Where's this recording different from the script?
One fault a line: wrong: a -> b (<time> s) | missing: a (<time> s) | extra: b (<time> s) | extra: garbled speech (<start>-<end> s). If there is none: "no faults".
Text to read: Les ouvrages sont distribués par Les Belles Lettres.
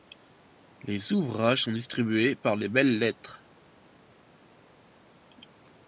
no faults